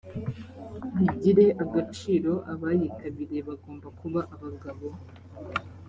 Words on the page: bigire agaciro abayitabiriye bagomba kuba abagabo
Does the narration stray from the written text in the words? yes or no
no